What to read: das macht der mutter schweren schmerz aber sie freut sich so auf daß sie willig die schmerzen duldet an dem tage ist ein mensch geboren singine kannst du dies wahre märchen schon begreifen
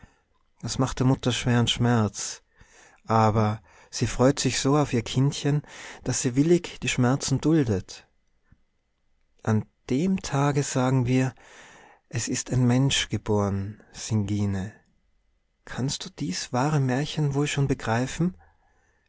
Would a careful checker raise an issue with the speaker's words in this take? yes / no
yes